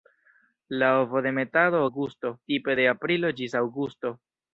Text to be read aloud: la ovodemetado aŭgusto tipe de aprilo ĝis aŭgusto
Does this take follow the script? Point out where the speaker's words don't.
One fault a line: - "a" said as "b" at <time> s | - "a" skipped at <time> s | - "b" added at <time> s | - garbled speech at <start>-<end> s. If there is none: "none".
none